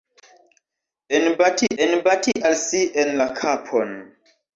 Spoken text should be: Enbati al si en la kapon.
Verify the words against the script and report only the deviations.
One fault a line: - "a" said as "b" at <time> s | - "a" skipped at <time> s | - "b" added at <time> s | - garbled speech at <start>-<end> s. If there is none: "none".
- "enbati" added at 1.8 s